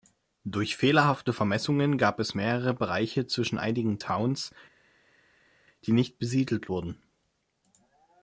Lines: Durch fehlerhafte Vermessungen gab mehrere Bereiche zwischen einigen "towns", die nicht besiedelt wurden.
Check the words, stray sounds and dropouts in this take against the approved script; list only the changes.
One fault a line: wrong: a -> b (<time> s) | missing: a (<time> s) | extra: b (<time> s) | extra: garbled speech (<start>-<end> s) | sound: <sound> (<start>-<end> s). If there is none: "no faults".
extra: es (2.2 s)